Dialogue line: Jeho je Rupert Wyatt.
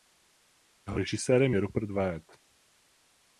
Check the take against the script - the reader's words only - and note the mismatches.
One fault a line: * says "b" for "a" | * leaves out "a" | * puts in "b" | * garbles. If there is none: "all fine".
* puts in "režisérem"